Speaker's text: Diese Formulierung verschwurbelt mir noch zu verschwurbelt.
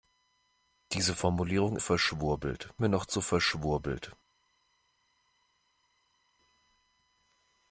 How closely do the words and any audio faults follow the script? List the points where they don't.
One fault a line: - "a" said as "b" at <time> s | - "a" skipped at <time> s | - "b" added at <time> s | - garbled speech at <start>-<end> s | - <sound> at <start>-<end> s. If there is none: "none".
none